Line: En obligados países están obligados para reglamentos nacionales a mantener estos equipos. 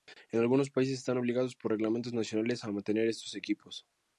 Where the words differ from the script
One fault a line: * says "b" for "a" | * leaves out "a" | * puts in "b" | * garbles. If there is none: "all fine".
* says "algunos" for "obligados"
* says "por" for "para"